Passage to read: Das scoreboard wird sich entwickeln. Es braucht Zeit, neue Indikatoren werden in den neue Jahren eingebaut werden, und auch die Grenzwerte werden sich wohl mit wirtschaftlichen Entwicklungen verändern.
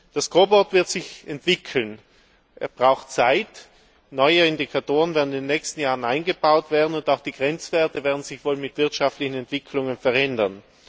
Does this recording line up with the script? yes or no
no